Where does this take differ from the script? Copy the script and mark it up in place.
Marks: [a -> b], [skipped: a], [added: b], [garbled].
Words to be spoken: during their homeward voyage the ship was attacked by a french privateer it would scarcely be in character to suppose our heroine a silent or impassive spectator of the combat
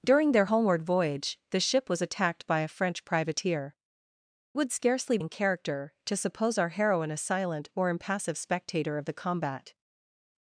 during their homeward voyage the ship was attacked by a french privateer [skipped: it] would scarcely [skipped: be] in character to suppose our heroine a silent or impassive spectator of the combat